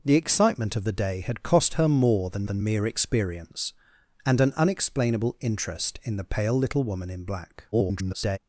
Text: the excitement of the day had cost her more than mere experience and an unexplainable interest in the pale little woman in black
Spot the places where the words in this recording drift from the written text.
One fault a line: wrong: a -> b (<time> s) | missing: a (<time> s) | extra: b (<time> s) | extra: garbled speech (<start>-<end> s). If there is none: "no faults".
extra: than (2.5 s)
extra: garbled speech (7.7-8.4 s)